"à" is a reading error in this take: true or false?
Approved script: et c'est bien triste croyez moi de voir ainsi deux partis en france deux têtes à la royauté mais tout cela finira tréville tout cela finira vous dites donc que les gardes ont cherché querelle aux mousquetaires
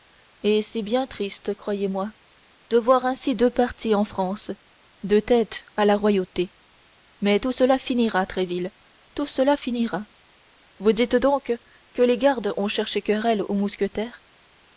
false